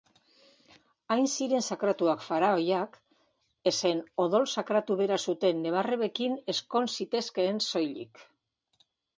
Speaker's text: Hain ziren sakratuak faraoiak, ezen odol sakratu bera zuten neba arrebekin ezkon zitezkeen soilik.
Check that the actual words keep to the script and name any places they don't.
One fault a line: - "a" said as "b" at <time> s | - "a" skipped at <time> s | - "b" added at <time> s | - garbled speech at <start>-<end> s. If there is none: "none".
none